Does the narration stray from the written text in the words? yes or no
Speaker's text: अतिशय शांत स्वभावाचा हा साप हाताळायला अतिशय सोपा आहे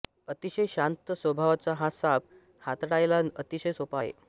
no